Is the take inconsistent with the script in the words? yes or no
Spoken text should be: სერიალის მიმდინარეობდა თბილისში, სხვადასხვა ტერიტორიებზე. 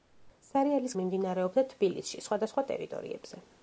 no